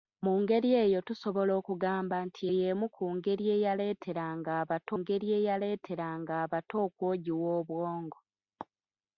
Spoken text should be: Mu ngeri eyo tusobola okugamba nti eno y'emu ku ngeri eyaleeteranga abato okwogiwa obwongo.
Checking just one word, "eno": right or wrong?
wrong